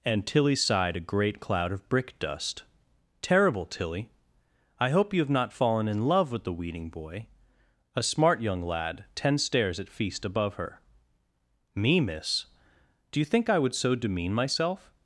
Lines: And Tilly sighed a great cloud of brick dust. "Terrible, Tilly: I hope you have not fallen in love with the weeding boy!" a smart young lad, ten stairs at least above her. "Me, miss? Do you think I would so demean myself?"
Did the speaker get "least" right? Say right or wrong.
wrong